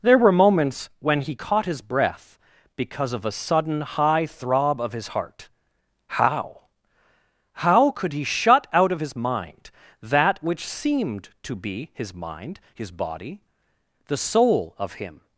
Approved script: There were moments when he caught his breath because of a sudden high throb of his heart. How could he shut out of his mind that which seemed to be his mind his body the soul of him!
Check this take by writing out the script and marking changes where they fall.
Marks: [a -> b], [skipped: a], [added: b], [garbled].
There were moments when he caught his breath because of a sudden high throb of his heart. How [added: How] could he shut out of his mind that which seemed to be his mind his body the soul of him!